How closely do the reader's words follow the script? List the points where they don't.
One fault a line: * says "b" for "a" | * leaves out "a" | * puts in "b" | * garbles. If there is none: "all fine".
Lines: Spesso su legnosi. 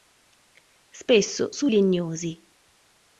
all fine